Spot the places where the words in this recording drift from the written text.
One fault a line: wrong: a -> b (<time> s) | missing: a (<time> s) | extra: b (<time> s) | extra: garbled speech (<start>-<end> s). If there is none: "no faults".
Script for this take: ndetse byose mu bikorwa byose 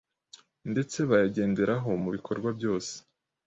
wrong: byose -> bayagenderaho (1.1 s)